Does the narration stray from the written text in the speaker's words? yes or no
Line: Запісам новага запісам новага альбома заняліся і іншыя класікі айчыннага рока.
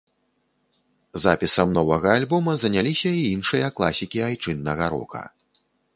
yes